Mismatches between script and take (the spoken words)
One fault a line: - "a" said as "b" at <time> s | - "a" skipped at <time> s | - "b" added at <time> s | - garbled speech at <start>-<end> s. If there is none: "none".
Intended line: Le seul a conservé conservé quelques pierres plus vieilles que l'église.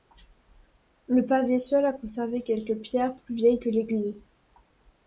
- "pavé" added at 1.2 s
- "conservé" skipped at 2.4 s